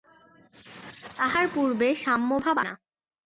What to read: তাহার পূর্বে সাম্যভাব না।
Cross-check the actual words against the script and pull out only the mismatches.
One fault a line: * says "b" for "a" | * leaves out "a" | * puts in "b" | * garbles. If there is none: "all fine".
all fine